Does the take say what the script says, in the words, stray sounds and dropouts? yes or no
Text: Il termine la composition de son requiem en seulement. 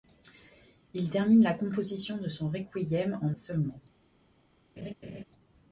no